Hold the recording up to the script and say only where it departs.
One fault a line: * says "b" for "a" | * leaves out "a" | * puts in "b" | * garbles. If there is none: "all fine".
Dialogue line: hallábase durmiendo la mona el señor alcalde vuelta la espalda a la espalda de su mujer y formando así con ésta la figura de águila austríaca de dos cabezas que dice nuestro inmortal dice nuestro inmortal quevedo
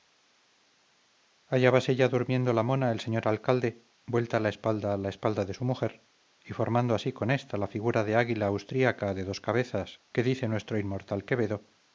* puts in "ya"
* leaves out "dice nuestro inmortal"